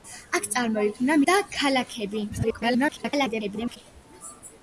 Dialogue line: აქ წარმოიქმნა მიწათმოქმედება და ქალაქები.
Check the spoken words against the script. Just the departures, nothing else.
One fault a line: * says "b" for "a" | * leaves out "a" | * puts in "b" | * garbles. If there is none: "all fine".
* leaves out "მიწათმოქმედება"
* garbles